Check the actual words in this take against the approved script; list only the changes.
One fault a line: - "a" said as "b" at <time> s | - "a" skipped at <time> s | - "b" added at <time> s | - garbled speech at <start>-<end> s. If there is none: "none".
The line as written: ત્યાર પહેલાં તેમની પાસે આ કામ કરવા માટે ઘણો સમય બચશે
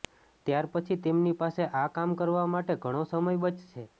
- "પહેલાં" said as "પછી" at 0.7 s